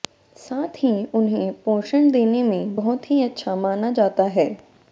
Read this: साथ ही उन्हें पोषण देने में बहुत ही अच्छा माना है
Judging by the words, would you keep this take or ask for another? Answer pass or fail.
fail